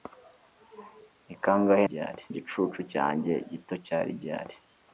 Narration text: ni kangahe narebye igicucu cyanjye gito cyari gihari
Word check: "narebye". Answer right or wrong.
wrong